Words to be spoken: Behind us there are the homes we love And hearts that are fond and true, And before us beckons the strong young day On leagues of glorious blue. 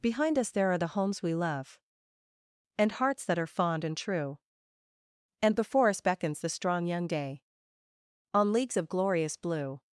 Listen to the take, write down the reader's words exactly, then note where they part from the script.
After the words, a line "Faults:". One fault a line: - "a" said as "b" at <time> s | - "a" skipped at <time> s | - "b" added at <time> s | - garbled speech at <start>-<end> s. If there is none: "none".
Behind us there are the homes we love And hearts that are fond and true, And before us beckons the strong young day On leagues of glorious blue.
Faults:
none